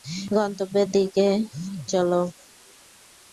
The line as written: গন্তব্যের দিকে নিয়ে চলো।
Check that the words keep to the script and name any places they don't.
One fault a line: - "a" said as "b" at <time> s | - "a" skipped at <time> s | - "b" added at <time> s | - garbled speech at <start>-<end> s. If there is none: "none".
- "নিয়ে" skipped at 1.3 s